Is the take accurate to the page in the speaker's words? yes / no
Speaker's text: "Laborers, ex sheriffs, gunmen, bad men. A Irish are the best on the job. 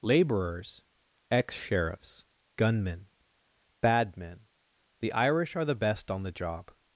no